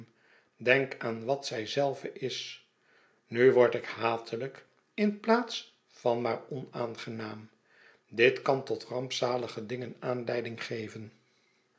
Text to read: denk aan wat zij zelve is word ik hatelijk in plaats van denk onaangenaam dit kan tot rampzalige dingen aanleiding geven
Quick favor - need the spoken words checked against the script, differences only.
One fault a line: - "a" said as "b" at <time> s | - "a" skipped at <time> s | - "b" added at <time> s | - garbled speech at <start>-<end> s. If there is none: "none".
- "nu" added at 3.3 s
- "denk" said as "maar" at 6.2 s